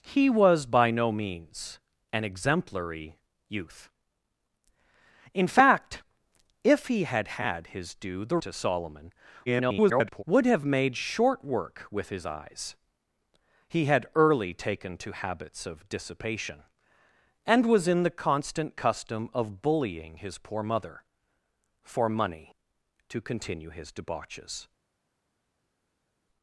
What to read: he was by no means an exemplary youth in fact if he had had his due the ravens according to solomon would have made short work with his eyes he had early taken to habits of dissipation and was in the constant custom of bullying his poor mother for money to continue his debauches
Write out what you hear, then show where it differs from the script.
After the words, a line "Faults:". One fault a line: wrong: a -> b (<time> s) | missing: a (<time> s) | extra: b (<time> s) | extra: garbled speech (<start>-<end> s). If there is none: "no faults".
he was by no means an exemplary youth in fact if he had had his due the to solomon [garbled] would have made short work with his eyes he had early taken to habits of dissipation and was in the constant custom of bullying his poor mother for money to continue his debauches
Faults:
missing: ravens according (8.4 s)
extra: garbled speech (9.5-10.2 s)